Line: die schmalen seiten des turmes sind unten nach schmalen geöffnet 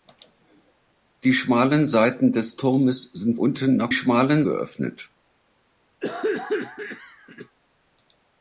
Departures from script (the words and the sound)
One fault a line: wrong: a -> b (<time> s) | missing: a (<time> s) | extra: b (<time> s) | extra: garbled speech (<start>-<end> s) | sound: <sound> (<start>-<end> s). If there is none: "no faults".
sound: cough (6.0-7.6 s)